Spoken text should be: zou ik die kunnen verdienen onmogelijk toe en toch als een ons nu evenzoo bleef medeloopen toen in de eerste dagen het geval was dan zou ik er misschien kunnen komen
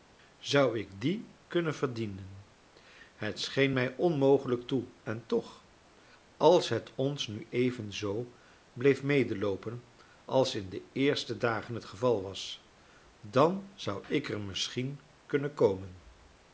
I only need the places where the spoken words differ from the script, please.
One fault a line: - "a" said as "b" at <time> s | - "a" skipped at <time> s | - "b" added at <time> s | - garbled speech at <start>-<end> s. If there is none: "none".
- "het scheen mij" added at 3.1 s
- "een" said as "het" at 6.7 s
- "toen" said as "als" at 10.2 s